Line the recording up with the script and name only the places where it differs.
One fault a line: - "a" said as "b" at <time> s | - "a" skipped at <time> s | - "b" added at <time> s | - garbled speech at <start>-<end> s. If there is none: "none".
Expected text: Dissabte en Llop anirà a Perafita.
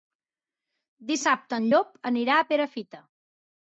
none